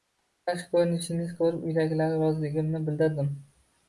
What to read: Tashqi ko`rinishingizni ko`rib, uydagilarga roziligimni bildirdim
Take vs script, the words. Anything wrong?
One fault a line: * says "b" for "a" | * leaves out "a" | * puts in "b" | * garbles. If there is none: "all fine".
all fine